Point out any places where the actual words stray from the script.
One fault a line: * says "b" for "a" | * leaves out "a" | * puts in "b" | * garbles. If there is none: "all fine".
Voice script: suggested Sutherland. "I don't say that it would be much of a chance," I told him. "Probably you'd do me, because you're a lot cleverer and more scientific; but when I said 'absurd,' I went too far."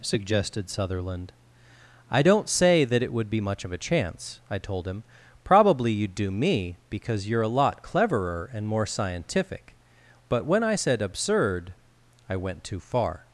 all fine